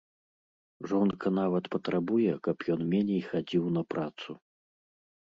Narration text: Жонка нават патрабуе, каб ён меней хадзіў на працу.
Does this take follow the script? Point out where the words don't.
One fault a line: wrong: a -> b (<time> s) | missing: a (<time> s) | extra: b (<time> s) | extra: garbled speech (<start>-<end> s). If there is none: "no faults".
no faults